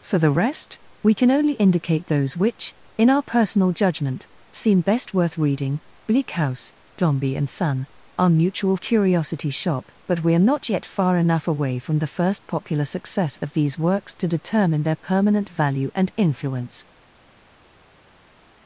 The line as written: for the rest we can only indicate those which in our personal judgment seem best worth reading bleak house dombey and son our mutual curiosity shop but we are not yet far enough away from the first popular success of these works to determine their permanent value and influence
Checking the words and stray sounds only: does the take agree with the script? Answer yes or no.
yes